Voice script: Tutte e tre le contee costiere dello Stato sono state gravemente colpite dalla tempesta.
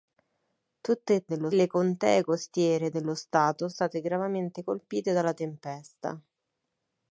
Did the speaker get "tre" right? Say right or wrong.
wrong